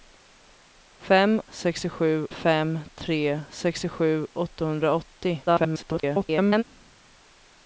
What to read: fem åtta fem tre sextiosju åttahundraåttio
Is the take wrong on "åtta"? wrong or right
wrong